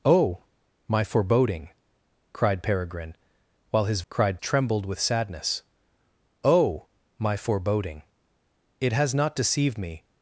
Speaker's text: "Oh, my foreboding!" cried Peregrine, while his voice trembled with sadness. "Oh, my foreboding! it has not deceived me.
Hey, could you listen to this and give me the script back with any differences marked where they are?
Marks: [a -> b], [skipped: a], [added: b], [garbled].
"Oh, my foreboding!" cried Peregrine, while his [voice -> cried] trembled with sadness. "Oh, my foreboding! it has not deceived me.